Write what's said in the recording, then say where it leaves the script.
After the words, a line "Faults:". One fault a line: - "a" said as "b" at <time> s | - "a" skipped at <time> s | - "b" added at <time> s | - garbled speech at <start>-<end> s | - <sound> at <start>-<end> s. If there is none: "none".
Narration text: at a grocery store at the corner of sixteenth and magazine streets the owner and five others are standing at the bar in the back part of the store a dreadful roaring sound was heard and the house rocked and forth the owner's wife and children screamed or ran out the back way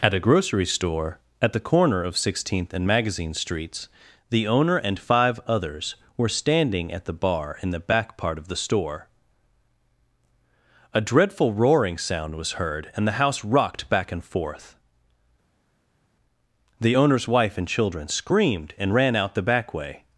at a grocery store at the corner of sixteenth and magazine streets the owner and five others were standing at the bar in the back part of the store a dreadful roaring sound was heard and the house rocked back and forth the owner's wife and children screamed and ran out the back way
Faults:
- "are" said as "were" at 6.1 s
- "back" added at 13.9 s
- "or" said as "and" at 18.8 s